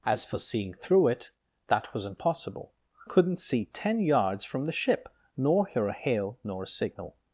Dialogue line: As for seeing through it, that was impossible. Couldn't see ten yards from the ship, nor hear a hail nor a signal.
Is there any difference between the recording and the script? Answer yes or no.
no